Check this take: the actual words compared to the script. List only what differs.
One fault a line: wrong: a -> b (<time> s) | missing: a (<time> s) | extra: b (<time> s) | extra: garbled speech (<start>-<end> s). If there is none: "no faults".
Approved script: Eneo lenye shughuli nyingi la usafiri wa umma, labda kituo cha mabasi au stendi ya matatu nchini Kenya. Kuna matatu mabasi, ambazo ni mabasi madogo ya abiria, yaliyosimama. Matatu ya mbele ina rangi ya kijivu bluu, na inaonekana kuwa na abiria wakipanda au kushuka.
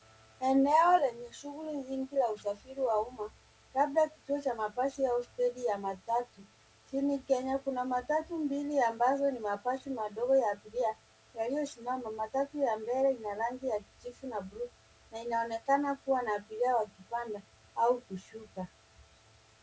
wrong: mabasi -> mbili (8.4 s)
extra: na (14.3 s)